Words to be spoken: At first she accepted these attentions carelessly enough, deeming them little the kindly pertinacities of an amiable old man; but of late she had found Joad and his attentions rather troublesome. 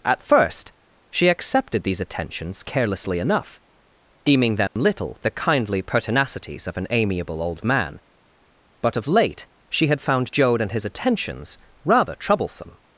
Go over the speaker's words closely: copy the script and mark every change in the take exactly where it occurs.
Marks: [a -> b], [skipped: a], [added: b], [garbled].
At first she accepted these attentions carelessly enough, deeming them little the kindly pertinacities of an amiable old man; but of late she had found Joad and his attentions rather troublesome.